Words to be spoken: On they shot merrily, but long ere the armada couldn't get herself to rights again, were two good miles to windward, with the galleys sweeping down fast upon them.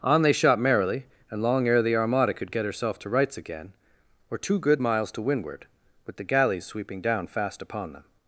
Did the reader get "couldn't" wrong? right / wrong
wrong